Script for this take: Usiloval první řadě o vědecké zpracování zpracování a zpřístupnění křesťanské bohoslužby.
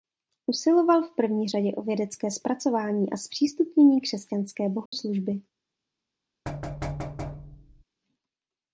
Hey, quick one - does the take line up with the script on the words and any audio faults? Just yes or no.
no